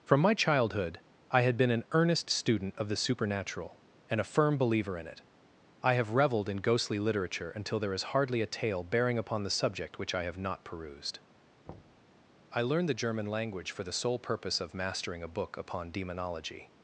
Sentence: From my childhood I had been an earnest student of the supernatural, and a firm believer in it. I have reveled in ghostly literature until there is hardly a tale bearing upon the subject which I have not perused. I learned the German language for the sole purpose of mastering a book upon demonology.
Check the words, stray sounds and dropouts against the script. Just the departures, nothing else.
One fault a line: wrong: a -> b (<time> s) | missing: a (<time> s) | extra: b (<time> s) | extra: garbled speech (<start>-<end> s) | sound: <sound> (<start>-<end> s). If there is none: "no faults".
sound: thud (11.7-12.1 s)